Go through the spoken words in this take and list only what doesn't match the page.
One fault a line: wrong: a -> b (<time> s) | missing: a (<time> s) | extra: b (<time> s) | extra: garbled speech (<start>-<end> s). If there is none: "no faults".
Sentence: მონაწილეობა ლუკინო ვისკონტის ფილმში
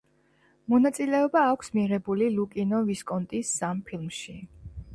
extra: აქვს მიღებული (1.5 s)
extra: სამ (3.6 s)